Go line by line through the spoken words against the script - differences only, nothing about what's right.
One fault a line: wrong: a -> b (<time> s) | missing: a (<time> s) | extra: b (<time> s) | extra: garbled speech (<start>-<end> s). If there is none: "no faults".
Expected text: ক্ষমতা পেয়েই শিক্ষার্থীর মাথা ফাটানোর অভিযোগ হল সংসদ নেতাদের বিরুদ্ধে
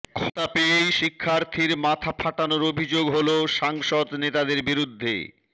no faults